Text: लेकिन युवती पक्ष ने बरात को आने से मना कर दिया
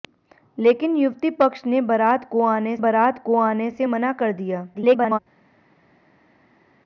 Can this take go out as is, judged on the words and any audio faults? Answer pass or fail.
fail